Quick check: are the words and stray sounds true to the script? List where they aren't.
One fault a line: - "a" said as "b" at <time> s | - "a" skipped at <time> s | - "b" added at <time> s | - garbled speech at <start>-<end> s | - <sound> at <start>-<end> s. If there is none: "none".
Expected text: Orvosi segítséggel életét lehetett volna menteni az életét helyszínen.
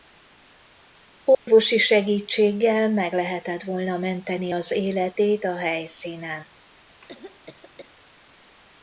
- dropout at 1.3-1.5 s
- "életét" said as "meg" at 2.9 s
- "a" added at 5.4 s
- cough at 7.0-7.9 s